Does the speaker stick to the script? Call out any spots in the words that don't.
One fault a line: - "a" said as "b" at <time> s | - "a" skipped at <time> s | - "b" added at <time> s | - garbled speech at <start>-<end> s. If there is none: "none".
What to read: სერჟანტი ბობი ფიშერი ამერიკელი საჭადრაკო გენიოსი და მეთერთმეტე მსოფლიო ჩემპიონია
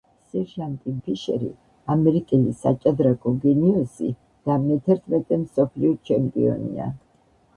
- "ბობი" skipped at 0.9 s